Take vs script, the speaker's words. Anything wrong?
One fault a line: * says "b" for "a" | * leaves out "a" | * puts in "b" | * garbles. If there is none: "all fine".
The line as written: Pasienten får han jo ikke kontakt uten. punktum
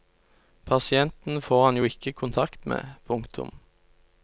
* says "med" for "uten"